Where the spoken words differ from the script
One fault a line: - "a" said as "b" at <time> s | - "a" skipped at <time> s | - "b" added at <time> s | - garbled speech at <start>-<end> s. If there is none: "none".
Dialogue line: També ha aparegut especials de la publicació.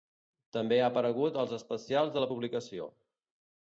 - "als" added at 1.4 s